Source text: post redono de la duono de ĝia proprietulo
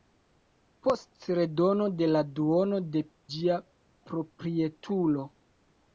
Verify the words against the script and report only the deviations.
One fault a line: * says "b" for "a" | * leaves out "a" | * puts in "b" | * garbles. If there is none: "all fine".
all fine